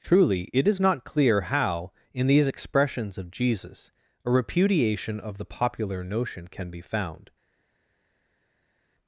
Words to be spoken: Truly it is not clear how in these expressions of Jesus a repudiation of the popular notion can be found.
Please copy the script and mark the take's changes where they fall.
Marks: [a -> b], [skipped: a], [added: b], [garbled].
Truly it is not clear how in these expressions of Jesus a repudiation of the popular notion can be found.